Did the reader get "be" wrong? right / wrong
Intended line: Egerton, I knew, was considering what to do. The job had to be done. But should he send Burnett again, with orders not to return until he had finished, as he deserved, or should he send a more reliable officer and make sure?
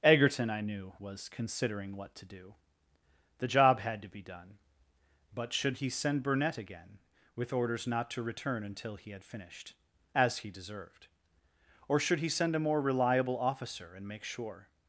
right